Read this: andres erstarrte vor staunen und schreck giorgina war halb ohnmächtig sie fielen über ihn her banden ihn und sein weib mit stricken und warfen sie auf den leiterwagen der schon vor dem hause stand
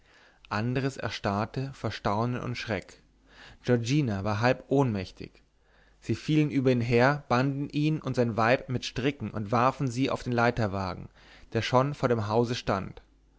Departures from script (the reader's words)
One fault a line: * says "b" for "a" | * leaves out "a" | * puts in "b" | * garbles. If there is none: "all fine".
all fine